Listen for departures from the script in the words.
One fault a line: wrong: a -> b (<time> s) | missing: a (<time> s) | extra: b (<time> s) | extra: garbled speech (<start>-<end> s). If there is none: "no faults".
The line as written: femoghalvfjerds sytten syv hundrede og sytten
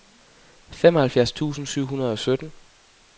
wrong: sytten -> tusind (1.3 s)